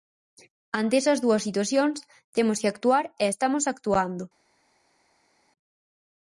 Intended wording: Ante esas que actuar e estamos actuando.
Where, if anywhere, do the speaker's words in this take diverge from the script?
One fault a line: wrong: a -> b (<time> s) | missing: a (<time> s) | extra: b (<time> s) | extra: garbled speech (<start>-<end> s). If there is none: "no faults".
extra: dúas situacións temos (1.2 s)